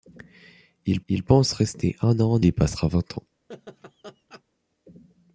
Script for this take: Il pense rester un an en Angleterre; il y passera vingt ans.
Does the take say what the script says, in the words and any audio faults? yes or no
no